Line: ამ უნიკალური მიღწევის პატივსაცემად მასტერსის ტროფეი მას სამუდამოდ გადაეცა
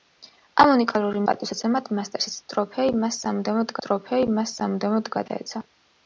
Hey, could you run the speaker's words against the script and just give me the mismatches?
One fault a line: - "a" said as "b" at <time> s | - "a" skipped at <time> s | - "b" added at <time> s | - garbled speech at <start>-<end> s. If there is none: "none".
- "მიღწევის" skipped at 1.2 s
- "ტროფეი მას სამუდამოდ" added at 3.9 s